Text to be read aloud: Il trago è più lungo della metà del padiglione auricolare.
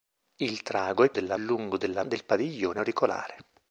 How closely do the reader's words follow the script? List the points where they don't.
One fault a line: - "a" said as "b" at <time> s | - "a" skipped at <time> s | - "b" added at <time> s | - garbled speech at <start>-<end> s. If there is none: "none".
- "più" said as "della" at 1.1 s
- "metà" skipped at 2.0 s